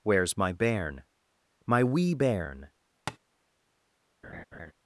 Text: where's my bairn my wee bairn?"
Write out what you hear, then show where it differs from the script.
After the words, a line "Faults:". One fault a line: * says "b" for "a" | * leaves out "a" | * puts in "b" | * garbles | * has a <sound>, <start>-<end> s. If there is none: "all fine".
where's my bairn my wee bairn?"
Faults:
* has a tap, 3.1-3.2 s
* has a laugh, 4.2-4.7 s